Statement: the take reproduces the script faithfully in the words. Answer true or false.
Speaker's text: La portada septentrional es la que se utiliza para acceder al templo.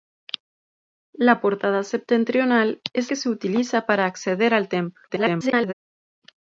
false